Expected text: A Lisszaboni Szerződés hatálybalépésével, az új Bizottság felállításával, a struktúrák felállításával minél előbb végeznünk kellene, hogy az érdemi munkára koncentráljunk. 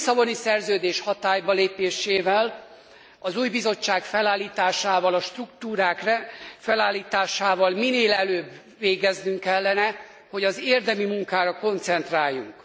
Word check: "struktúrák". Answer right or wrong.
right